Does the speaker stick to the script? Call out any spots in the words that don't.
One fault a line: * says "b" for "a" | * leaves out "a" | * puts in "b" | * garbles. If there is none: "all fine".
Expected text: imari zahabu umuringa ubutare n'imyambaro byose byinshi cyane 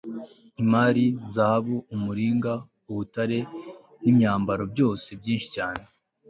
all fine